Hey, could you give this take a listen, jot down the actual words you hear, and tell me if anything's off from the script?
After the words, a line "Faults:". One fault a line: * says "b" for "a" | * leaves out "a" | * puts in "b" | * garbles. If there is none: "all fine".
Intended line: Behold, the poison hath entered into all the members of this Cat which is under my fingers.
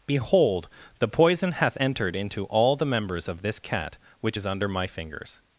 Behold, the poison hath entered into all the members of this Cat which is under my fingers.
Faults:
all fine